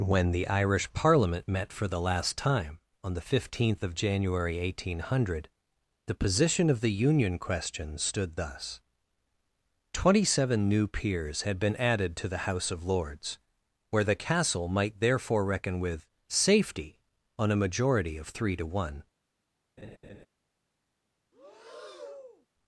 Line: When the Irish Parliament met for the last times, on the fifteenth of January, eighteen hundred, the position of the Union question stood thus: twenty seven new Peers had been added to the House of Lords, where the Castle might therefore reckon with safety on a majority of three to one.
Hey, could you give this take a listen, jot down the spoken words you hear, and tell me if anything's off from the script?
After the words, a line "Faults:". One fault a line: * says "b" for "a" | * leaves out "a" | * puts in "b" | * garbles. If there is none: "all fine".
When the Irish Parliament met for the last time, on the fifteenth of January, eighteen hundred, the position of the Union question stood thus: twenty seven new Peers had been added to the House of Lords, where the Castle might therefore reckon with safety on a majority of three to one.
Faults:
* says "time" for "times"